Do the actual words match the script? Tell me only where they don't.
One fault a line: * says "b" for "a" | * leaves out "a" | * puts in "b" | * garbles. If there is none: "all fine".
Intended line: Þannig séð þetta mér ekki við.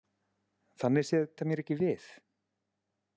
all fine